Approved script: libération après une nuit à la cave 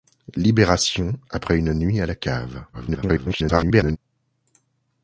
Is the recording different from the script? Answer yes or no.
yes